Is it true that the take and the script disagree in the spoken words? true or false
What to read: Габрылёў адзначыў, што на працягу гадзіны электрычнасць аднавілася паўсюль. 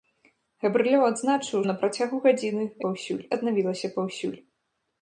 true